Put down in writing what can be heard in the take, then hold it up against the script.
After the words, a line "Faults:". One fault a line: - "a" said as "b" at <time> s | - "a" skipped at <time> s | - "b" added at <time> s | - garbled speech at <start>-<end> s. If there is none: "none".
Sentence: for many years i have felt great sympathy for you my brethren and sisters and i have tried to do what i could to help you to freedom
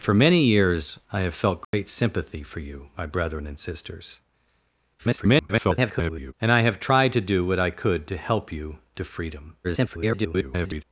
for many years i have felt great sympathy for you my brethren and sisters [garbled] and i have tried to do what i could to help you to freedom [garbled]
Faults:
- garbled speech at 5.0-6.3 s
- garbled speech at 9.6-10.8 s